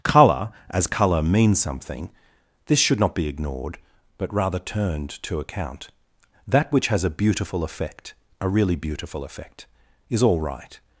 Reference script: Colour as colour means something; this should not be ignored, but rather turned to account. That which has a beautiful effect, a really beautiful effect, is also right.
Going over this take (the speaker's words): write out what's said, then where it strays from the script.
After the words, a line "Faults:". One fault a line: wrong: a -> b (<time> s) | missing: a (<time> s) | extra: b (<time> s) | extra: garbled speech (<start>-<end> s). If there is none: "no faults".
Colour as colour means something; this should not be ignored, but rather turned to account. That which has a beautiful effect, a really beautiful effect, is all right.
Faults:
wrong: also -> all (10.2 s)